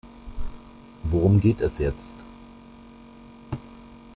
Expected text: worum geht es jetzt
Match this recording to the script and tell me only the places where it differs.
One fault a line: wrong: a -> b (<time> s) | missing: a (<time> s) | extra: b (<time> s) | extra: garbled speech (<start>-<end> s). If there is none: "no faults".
no faults